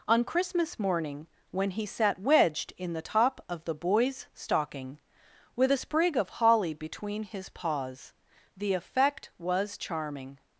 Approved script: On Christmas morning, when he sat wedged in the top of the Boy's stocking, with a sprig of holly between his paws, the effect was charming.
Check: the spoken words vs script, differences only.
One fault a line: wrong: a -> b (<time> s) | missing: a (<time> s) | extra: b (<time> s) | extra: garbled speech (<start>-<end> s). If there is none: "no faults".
no faults